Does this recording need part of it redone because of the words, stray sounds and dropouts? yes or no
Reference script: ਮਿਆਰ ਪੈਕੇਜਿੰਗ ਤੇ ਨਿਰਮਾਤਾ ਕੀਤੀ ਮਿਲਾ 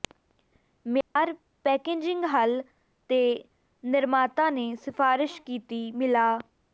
yes